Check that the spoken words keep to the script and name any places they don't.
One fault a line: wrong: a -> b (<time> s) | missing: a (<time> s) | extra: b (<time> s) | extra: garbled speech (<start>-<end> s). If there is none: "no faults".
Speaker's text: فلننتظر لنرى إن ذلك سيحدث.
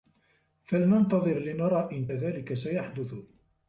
no faults